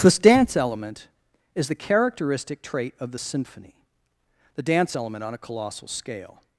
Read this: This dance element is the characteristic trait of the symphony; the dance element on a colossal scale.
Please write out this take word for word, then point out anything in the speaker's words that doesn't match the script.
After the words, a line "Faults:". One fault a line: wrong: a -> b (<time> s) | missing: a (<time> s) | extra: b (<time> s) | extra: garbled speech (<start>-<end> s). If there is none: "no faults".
This dance element is the characteristic trait of the symphony; the dance element on a colossal scale.
Faults:
no faults